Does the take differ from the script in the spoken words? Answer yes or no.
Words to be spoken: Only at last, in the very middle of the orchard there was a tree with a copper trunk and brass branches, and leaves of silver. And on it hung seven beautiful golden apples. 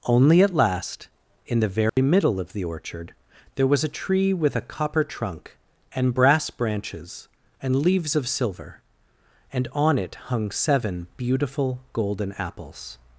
no